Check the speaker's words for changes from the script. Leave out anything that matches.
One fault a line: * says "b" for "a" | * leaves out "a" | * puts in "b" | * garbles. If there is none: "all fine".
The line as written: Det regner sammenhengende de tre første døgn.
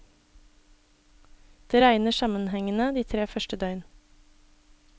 all fine